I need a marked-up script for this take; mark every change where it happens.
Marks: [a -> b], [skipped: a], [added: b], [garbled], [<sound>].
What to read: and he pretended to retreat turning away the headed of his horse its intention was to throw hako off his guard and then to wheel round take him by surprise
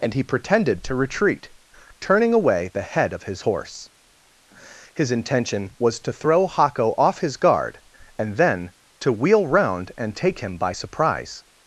and he pretended to retreat turning away the [headed -> head] of his horse [its -> his] intention was to throw hako off his guard and then to wheel round [added: and] take him by surprise